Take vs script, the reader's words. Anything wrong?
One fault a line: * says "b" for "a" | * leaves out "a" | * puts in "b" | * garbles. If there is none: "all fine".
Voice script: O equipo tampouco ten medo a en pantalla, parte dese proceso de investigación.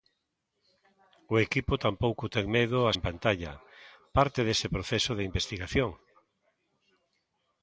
all fine